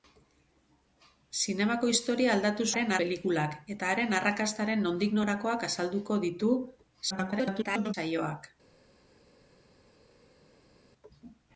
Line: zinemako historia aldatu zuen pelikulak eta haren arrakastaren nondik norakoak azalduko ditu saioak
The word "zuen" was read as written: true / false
false